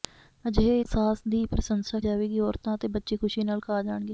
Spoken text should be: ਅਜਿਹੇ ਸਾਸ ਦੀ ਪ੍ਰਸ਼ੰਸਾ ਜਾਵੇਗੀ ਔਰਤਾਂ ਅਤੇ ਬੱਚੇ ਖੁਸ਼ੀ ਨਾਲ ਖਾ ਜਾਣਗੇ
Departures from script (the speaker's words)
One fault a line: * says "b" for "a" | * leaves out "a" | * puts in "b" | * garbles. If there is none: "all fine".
all fine